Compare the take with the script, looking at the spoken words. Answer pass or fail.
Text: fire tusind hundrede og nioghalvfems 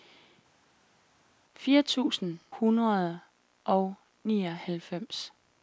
pass